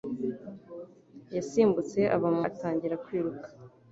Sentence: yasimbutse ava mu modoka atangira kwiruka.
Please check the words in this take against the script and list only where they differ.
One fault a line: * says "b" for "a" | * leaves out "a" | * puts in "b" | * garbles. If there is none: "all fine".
* leaves out "modoka"